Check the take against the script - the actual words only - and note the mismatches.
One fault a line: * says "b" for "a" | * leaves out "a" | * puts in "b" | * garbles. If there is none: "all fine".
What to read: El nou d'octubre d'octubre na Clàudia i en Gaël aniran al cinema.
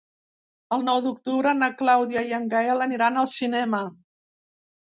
* leaves out "d'octubre"